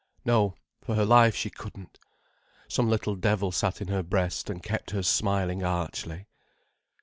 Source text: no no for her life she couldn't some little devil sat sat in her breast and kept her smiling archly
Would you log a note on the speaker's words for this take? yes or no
yes